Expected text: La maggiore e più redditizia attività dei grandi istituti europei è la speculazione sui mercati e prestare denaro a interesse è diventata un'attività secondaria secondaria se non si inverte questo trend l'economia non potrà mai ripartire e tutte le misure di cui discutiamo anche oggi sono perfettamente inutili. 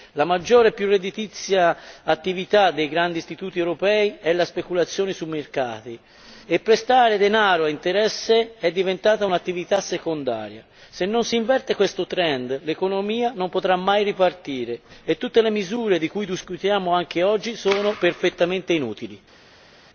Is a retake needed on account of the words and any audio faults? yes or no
yes